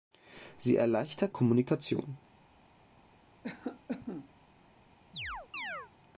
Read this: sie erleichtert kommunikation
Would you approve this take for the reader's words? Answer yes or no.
yes